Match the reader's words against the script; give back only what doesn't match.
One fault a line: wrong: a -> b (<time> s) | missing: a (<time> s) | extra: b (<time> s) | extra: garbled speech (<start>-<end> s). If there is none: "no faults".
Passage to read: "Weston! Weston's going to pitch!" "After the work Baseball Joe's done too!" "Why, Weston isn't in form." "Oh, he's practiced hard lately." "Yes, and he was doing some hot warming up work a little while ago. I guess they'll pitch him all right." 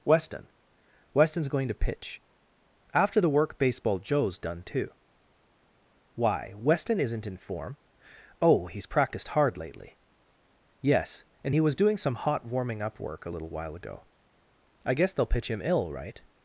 wrong: all -> ill (15.6 s)